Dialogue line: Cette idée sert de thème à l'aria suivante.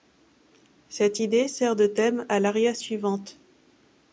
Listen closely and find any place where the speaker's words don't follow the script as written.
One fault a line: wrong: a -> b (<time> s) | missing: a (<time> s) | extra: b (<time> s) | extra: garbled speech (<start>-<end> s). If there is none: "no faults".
no faults